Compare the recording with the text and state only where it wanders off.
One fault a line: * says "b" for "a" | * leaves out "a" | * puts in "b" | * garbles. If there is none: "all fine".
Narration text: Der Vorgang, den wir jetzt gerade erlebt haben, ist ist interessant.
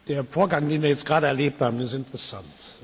* leaves out "ist"